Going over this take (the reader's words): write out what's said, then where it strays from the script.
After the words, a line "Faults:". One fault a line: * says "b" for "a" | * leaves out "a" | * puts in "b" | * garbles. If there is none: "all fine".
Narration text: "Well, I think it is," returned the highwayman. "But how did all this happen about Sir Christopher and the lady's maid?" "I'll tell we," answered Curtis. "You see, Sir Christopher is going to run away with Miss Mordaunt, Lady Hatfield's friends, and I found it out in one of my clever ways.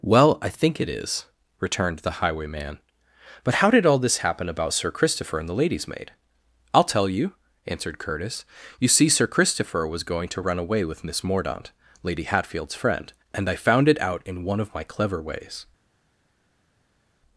"Well, I think it is," returned the highwayman. "But how did all this happen about Sir Christopher and the lady's maid?" "I'll tell you," answered Curtis. "You see, Sir Christopher was going to run away with Miss Mordaunt, Lady Hatfield's friend, and I found it out in one of my clever ways.
Faults:
* says "you" for "we"
* says "was" for "is"
* says "friend" for "friends"